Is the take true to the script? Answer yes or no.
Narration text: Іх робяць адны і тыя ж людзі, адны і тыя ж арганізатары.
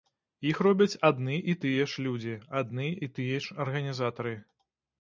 yes